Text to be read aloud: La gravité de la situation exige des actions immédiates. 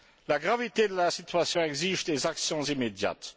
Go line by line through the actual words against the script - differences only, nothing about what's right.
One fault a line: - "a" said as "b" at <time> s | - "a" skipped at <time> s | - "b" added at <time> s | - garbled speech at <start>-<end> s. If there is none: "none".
none